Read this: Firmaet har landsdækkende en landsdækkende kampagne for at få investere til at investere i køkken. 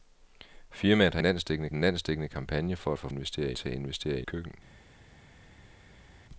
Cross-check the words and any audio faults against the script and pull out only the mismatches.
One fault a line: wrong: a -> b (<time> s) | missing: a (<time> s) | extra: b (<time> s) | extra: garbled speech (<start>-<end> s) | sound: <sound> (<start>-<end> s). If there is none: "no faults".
no faults